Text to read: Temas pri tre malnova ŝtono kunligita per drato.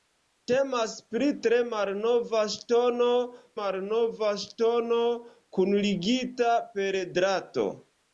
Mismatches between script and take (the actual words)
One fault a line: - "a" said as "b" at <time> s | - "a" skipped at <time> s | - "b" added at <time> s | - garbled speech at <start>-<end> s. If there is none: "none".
- "malnova ŝtono" added at 3.6 s